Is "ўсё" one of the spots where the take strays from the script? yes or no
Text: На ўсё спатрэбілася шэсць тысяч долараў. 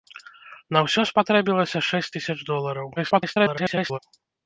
no